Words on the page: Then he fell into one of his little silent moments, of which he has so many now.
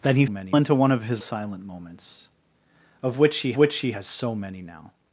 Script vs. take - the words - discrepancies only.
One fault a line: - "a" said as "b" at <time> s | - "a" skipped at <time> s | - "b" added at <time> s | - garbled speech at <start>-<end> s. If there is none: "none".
- "fell" said as "many" at 0.3 s
- "little" skipped at 1.2 s
- "which he" added at 3.6 s